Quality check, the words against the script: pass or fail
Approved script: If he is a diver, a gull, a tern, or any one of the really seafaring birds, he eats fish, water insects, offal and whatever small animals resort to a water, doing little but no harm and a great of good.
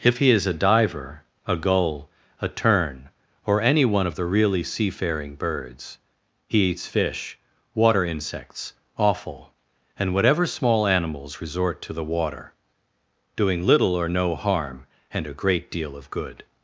fail